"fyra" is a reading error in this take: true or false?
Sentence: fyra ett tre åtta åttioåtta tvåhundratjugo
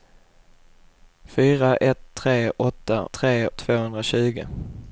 false